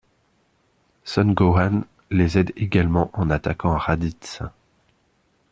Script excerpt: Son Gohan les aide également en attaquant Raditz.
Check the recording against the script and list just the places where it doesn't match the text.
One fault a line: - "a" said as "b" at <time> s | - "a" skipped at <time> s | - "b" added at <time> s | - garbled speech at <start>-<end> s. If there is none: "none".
none